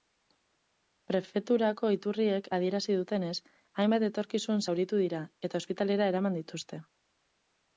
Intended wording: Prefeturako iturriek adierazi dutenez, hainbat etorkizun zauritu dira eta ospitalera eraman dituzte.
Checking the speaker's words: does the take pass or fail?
pass